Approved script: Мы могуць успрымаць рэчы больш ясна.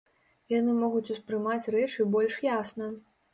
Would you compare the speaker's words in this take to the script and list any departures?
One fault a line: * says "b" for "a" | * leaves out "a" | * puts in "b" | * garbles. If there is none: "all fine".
* says "Яны" for "Мы"